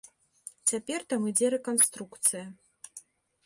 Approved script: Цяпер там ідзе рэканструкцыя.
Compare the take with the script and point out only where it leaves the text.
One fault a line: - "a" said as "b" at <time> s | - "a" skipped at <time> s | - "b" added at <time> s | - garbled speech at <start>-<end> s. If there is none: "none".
none